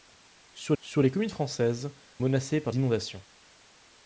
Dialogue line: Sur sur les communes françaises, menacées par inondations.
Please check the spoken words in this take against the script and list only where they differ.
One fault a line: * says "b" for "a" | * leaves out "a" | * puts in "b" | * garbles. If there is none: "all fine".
all fine